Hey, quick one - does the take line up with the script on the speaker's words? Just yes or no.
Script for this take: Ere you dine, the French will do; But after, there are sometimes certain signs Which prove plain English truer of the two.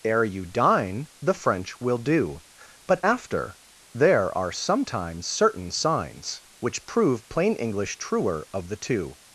yes